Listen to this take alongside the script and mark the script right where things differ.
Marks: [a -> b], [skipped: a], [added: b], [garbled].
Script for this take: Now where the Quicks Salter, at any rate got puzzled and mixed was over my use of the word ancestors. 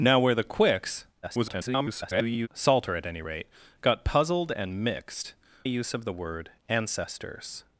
Now where the Quicks [garbled] Salter, at any rate got puzzled and mixed [skipped: was over my] use of the word ancestors.